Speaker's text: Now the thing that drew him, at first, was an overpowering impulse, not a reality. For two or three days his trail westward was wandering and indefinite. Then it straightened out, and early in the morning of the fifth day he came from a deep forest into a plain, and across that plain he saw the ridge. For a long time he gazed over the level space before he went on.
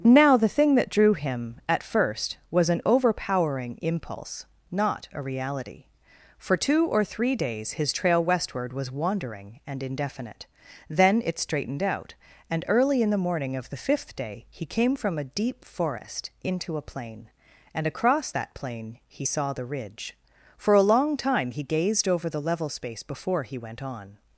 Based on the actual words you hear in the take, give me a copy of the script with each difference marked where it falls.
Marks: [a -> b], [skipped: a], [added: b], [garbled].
Now the thing that drew him, at first, was an overpowering impulse, not a reality. For two or three days his trail westward was wandering and indefinite. Then it straightened out, and early in the morning of the fifth day he came from a deep forest into a plain, and across that plain he saw the ridge. For a long time he gazed over the level space before he went on.